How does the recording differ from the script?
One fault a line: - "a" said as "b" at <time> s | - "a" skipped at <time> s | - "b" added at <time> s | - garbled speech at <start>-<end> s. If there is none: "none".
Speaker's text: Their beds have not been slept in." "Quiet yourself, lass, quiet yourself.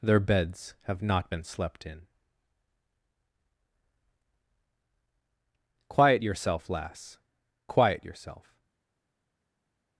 none